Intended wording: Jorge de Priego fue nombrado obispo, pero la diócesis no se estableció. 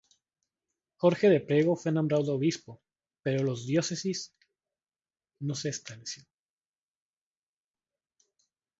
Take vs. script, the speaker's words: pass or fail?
pass